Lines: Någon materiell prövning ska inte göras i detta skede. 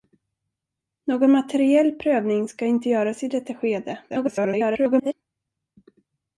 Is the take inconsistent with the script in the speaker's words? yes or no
yes